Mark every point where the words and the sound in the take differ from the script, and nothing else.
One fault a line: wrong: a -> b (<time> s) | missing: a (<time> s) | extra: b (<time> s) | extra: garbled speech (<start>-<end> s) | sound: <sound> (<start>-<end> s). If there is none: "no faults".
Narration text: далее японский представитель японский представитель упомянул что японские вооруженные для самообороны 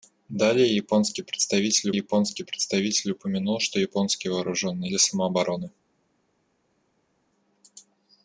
no faults